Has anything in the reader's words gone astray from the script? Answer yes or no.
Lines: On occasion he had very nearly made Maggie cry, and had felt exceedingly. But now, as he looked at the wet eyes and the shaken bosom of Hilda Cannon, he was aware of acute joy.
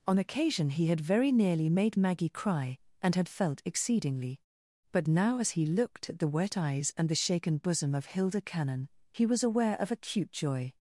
no